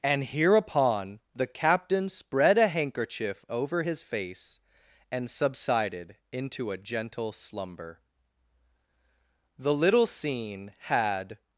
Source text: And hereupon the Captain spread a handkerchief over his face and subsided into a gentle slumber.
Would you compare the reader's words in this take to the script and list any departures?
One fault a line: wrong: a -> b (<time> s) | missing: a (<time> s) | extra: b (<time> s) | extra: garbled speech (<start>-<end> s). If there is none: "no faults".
extra: The little scene had (9.6 s)